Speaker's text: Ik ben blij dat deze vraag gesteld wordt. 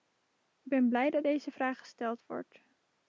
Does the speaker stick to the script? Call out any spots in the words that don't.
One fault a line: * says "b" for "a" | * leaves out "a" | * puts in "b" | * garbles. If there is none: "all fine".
all fine